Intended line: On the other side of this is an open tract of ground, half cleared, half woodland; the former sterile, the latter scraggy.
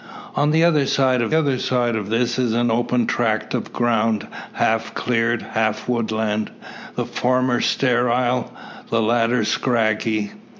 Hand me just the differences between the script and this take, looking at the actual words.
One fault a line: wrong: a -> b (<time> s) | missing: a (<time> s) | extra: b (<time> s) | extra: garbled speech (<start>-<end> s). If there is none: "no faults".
extra: other side of (1.3 s)